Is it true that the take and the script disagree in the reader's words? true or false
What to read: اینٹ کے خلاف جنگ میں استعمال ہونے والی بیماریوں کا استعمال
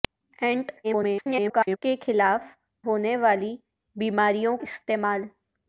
true